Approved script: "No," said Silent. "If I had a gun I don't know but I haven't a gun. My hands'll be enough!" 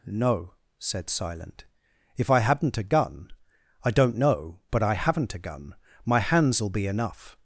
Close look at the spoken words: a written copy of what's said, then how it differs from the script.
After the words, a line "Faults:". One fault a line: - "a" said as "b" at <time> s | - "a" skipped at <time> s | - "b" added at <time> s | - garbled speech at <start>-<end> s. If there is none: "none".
"No," said Silent. "If I hadn't a gun I don't know but I haven't a gun. My hands'll be enough!"
Faults:
- "had" said as "hadn't" at 2.4 s